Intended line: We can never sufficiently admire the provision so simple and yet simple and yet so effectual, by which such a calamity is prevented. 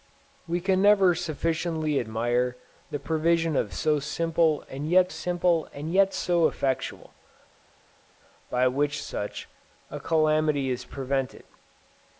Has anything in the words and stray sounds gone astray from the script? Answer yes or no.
no